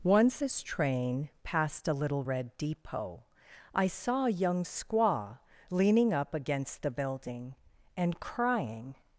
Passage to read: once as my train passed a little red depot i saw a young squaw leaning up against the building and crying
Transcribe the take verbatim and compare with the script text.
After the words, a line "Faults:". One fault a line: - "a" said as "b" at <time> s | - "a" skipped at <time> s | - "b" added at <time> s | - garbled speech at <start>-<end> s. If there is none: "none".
once as train passed a little red depot i saw a young squaw leaning up against the building and crying
Faults:
- "my" skipped at 0.6 s